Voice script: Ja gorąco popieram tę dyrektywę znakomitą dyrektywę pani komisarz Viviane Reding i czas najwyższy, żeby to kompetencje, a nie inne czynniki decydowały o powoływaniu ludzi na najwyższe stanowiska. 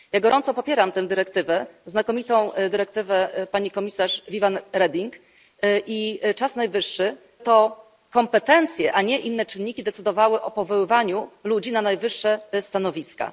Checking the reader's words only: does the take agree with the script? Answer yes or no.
no